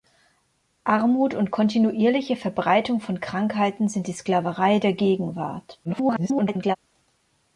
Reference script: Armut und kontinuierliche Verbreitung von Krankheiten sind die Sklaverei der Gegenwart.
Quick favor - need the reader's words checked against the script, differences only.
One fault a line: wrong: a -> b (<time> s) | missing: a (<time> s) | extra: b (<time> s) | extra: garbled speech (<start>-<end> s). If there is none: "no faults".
extra: garbled speech (5.8-6.8 s)